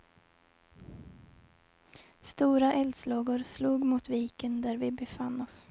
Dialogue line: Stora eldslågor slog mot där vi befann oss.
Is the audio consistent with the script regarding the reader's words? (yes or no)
no